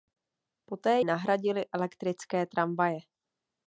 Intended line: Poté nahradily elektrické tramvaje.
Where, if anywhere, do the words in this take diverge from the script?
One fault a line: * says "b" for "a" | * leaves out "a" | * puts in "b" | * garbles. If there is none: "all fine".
all fine